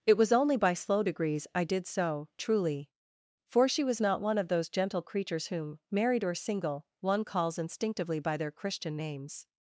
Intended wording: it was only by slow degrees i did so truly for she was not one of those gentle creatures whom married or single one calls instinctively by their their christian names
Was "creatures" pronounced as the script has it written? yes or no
yes